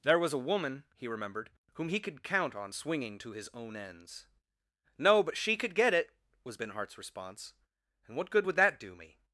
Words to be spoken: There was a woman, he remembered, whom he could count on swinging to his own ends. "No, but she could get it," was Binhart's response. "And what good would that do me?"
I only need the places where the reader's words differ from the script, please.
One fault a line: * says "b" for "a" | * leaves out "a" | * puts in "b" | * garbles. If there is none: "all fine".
all fine